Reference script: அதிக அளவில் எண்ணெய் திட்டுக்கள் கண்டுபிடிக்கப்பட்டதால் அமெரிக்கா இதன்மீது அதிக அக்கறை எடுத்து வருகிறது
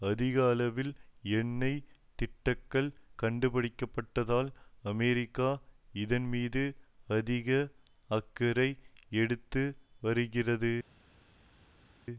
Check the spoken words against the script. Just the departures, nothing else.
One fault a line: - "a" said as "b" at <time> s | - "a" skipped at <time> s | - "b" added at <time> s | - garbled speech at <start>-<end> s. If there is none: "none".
none